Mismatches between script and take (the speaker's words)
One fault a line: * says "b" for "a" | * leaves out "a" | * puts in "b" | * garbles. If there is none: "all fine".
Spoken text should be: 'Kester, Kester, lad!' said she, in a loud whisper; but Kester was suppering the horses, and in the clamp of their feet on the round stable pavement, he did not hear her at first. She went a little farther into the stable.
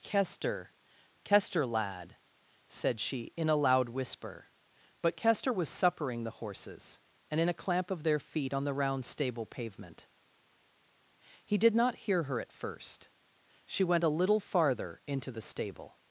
* says "a" for "the"